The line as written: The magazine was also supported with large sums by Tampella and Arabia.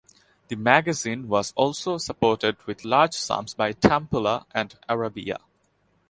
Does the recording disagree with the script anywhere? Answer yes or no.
no